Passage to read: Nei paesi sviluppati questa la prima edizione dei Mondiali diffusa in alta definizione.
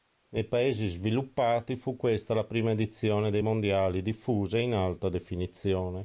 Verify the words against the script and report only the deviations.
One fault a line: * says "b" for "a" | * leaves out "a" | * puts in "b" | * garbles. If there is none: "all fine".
* puts in "fu"